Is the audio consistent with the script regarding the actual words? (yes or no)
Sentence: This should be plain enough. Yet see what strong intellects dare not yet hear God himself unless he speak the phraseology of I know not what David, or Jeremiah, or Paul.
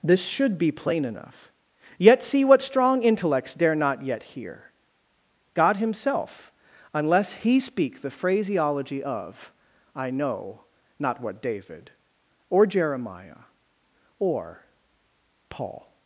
yes